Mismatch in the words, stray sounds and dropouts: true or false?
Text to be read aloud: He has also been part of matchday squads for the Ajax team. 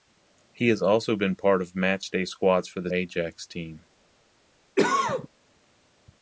true